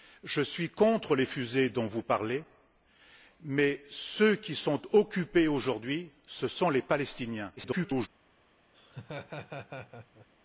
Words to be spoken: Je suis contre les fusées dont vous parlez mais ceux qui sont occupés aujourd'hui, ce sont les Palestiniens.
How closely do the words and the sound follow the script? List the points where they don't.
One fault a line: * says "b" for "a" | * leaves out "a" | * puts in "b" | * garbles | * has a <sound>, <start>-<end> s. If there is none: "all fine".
* garbles
* has a laugh, 8.7-10.3 s